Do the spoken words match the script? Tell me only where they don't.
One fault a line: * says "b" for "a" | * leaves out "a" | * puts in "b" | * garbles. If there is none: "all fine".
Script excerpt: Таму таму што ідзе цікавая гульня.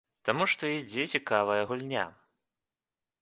* leaves out "таму"